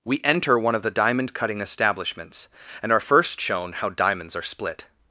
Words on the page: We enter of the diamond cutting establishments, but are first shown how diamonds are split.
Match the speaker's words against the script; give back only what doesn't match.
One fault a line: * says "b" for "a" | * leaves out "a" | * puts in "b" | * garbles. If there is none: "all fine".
* puts in "one"
* says "and" for "but"